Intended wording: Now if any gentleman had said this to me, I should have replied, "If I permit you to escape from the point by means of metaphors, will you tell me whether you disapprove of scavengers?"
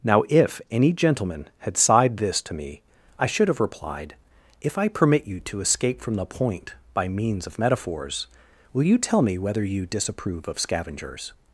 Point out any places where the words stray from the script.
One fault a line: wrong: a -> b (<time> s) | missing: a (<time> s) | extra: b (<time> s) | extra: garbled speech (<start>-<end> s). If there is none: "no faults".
wrong: said -> sighed (1.8 s)